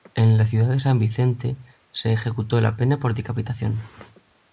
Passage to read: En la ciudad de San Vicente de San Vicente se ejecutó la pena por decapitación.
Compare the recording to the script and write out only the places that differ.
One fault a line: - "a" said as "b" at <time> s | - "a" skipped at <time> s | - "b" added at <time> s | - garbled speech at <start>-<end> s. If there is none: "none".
- "de San Vicente" skipped at 1.6 s